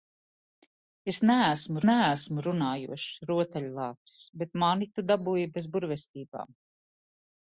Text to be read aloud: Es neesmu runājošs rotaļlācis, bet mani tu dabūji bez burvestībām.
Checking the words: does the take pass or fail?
fail